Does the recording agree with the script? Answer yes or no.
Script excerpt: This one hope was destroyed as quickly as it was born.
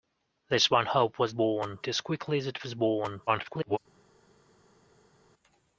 no